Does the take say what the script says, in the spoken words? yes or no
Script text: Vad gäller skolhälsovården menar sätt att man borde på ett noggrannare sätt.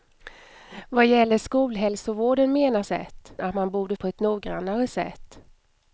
yes